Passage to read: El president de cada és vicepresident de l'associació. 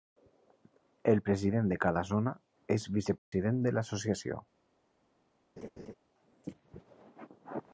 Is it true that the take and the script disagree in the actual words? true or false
true